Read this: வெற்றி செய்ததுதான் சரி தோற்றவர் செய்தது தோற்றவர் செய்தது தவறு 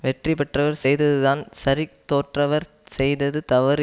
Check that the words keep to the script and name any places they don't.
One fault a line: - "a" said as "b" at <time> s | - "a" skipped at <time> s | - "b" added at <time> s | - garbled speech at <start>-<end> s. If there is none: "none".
- "பெற்றவர்" added at 0.3 s
- "தோற்றவர் செய்தது" skipped at 3.4 s